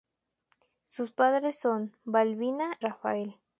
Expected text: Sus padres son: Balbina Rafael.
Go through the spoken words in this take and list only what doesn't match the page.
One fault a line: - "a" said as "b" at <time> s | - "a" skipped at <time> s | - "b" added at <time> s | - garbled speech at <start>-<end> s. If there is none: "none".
none